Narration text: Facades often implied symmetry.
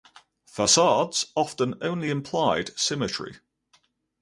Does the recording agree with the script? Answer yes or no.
no